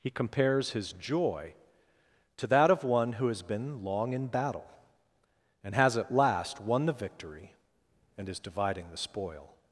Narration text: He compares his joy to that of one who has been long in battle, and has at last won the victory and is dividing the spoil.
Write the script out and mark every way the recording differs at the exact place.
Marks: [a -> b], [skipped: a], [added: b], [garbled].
He compares his joy to that of one who has been long in battle, and has at last won the victory and is dividing the spoil.